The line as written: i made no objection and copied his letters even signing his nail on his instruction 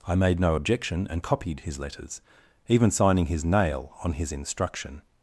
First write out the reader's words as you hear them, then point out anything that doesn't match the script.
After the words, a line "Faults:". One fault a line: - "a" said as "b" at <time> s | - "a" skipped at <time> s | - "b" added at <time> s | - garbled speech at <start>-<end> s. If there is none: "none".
i made no objection and copied his letters even signing his nail on his instruction
Faults:
none